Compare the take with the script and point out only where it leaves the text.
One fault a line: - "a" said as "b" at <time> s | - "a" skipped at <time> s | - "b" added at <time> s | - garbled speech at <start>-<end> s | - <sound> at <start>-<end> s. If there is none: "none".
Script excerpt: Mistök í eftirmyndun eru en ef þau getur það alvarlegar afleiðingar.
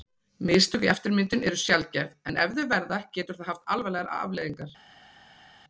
- "sjaldgæf" added at 1.6 s
- "verða" added at 2.7 s
- "haft" added at 3.5 s